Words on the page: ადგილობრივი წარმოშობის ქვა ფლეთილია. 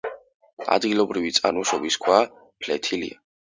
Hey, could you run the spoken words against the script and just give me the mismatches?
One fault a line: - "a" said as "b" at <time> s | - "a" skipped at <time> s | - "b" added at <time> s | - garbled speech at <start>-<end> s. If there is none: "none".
none